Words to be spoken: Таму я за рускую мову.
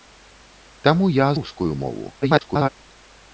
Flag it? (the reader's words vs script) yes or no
yes